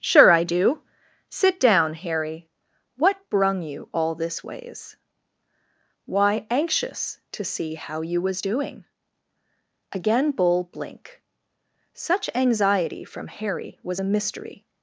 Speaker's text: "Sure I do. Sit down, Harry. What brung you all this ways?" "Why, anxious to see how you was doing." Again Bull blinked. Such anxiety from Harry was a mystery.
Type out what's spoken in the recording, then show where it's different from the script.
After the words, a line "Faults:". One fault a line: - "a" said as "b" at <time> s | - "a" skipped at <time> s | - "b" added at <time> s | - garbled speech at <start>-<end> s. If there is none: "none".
"Sure I do. Sit down, Harry. What brung you all this ways?" "Why, anxious to see how you was doing." Again Bull blink. Such anxiety from Harry was a mystery.
Faults:
- "blinked" said as "blink" at 10.6 s